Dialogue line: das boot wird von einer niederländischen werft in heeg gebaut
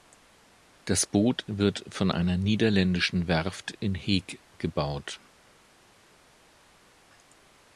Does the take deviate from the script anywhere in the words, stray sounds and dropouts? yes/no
no